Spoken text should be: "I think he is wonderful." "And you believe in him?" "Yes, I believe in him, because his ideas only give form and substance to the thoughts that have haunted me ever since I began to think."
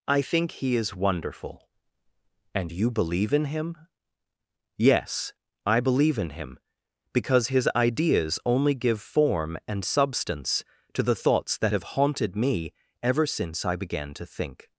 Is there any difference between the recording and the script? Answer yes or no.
no